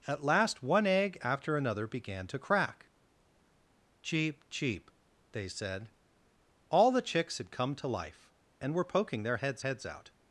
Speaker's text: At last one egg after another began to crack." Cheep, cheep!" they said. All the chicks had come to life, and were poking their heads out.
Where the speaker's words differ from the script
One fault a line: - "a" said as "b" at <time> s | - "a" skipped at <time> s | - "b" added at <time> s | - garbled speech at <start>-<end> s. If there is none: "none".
- "heads" added at 9.6 s